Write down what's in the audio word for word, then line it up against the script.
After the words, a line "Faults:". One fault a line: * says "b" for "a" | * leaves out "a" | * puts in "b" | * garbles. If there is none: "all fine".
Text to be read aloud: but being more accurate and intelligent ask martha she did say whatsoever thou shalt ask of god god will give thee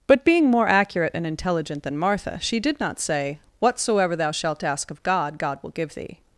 but being more accurate and intelligent than martha she did not say whatsoever thou shalt ask of god god will give thee
Faults:
* says "than" for "ask"
* puts in "not"